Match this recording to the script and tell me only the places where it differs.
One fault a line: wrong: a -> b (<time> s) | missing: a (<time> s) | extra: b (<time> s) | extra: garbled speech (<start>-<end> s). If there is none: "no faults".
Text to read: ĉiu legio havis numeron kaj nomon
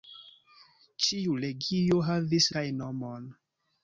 missing: numeron (2.5 s)